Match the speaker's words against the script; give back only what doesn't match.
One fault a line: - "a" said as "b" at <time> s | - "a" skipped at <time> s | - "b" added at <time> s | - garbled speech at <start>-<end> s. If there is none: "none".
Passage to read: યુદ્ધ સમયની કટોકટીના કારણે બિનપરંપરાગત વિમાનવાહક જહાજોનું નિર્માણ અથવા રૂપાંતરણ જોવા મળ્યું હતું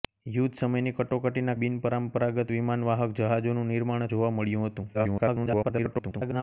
- "કારણે" skipped at 1.5 s
- "અથવા રૂપાંતરણ" skipped at 4.1 s
- garbled speech at 4.9-6.4 s